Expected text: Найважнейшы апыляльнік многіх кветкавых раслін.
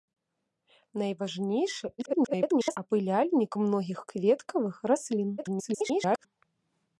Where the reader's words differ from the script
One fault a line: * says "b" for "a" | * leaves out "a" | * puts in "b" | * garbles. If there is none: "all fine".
* garbles
* garbles